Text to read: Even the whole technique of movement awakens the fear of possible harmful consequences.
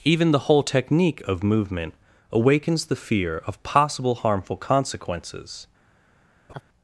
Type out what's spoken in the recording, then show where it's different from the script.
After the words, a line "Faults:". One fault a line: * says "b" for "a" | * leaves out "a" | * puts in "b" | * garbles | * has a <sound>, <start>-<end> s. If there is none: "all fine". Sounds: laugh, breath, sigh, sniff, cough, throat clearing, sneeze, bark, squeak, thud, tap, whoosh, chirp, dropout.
Even the whole technique of movement awakens the fear of possible harmful consequences.
Faults:
* has a laugh, 6.5-6.6 s